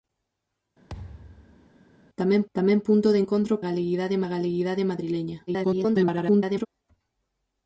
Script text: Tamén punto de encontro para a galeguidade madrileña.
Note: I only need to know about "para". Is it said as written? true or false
false